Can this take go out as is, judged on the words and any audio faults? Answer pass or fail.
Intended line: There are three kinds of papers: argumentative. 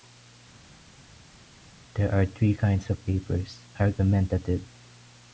pass